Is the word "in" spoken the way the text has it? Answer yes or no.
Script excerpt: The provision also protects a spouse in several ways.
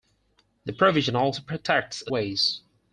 no